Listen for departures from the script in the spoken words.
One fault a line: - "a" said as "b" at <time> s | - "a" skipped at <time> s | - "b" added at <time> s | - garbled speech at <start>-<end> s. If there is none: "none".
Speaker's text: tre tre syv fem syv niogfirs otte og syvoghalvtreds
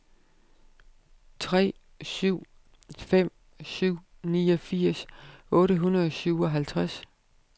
- "tre" skipped at 1.7 s
- "hundrede" added at 5.8 s